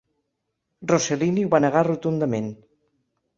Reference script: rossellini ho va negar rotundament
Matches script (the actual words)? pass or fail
pass